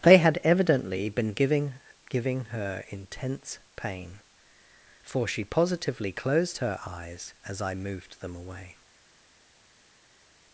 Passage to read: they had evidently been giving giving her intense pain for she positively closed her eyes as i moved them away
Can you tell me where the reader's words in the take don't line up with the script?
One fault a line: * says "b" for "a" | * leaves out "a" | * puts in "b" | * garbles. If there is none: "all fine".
all fine